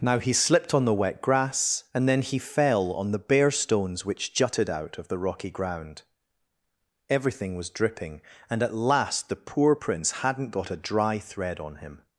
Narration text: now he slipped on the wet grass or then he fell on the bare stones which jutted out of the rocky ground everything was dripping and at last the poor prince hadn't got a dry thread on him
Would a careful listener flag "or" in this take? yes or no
yes